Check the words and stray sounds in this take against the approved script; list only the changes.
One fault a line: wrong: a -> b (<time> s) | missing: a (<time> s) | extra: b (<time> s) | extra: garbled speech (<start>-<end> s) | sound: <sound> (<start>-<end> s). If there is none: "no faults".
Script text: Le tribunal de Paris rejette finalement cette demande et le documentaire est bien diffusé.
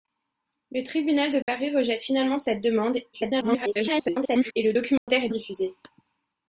sound: dropout (1.4-1.5 s)
extra: garbled speech (3.1-4.5 s)
sound: dropout (5.0-5.1 s)
missing: bien (5.3 s)